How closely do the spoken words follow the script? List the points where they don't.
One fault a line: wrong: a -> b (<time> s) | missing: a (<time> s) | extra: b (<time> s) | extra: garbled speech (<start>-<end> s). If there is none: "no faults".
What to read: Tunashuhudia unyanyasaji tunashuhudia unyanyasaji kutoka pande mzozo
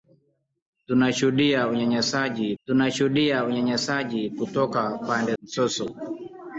no faults